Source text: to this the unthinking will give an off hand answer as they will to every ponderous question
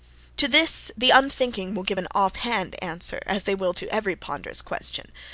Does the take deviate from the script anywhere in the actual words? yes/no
no